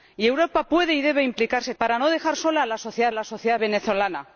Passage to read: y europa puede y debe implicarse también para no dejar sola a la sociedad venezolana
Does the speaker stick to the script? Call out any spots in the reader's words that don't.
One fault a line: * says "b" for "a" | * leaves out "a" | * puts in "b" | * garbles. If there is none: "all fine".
* leaves out "también"
* puts in "la sociedad"